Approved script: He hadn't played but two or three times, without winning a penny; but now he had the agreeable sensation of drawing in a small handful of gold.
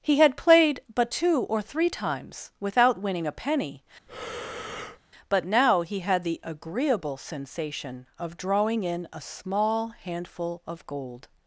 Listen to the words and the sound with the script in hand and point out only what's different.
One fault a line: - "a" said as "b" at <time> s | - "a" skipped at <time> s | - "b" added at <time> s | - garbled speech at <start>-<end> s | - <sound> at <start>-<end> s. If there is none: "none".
- "hadn't" said as "had" at 0.2 s
- breath at 4.1-5.0 s